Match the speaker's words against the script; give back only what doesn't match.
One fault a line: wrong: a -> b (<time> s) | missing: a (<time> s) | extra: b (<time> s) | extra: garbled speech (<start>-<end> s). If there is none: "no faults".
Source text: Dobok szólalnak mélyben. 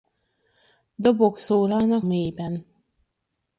no faults